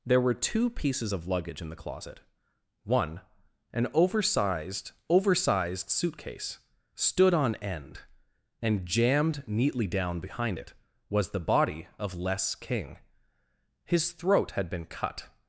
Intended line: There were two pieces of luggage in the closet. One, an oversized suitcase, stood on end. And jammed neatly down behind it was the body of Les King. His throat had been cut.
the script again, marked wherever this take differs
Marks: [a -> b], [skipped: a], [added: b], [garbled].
There were two pieces of luggage in the closet. One, an oversized [added: oversized] suitcase, stood on end. And jammed neatly down behind it was the body of Les King. His throat had been cut.